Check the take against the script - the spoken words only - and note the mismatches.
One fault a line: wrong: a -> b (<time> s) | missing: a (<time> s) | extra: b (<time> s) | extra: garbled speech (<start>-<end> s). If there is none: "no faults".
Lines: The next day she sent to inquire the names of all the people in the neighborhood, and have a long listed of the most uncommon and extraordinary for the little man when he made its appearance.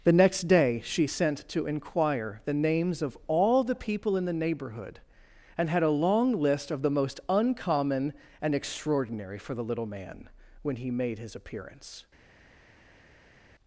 wrong: have -> had (5.7 s)
wrong: listed -> list (6.4 s)
wrong: its -> his (11.2 s)